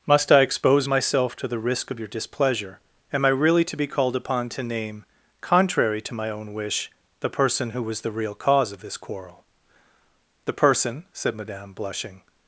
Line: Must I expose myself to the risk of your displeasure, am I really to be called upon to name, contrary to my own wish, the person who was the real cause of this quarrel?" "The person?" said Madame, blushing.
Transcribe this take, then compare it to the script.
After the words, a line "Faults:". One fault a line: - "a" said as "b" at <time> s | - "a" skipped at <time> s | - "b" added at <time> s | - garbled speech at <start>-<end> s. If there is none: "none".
Must I expose myself to the risk of your displeasure, am I really to be called upon to name, contrary to my own wish, the person who was the real cause of this quarrel?" "The person?" said Madame, blushing.
Faults:
none